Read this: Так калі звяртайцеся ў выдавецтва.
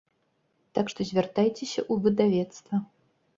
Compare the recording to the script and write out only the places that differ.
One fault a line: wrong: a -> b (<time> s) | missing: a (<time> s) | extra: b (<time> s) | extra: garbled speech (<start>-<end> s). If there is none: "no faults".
wrong: калі -> што (0.9 s)